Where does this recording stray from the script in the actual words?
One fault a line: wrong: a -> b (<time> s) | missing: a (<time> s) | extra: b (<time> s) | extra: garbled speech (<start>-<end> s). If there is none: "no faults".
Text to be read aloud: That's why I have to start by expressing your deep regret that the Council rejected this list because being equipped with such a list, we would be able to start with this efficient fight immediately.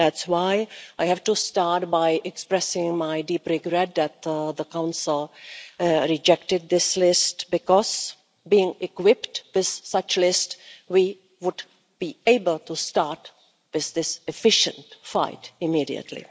wrong: your -> my (3.0 s)